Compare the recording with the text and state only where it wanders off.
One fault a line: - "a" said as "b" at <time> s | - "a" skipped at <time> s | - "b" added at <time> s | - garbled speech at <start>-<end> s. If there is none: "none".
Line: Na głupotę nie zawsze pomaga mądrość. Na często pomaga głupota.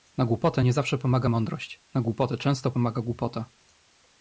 - "głupotę" added at 2.0 s